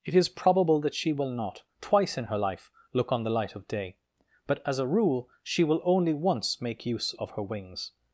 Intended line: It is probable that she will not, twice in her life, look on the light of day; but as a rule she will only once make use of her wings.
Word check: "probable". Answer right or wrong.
right